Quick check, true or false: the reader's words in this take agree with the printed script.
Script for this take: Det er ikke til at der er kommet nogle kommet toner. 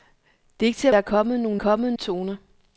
true